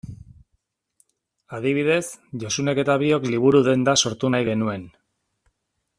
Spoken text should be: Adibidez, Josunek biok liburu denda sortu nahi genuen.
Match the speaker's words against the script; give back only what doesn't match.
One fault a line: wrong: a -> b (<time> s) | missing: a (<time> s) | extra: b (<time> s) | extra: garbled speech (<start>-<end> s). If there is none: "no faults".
extra: eta (2.9 s)